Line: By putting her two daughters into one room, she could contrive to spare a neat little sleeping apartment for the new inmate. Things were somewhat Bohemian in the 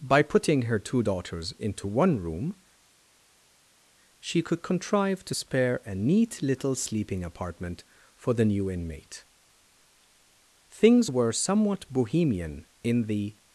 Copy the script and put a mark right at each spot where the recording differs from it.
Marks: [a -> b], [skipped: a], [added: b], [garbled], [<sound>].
By putting her two daughters into one room, she could contrive to spare a neat little sleeping apartment for the new inmate. Things were somewhat Bohemian in the